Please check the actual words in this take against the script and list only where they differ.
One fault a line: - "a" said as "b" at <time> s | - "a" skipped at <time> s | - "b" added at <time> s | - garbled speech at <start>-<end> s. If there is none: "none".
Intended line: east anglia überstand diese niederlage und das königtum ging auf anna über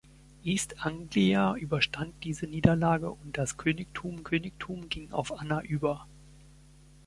- "königtum" added at 4.2 s